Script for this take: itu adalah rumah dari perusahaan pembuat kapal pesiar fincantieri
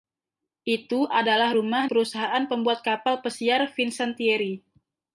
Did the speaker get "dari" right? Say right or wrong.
wrong